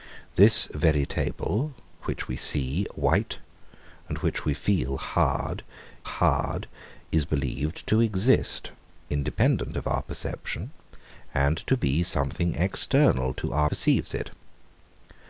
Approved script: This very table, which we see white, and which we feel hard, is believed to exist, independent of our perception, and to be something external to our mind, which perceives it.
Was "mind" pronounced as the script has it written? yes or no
no